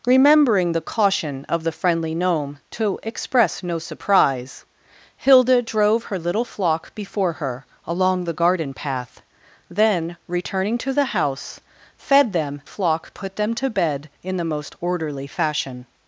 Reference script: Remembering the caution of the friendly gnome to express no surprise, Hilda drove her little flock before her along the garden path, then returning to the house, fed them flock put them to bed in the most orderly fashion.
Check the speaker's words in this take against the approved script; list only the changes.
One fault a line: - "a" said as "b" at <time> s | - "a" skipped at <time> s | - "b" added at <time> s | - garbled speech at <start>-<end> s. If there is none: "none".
none